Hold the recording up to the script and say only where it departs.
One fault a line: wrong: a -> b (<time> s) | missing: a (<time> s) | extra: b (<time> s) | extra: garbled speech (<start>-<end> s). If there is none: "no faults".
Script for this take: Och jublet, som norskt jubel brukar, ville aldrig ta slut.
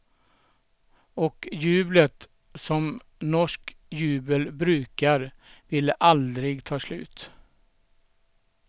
no faults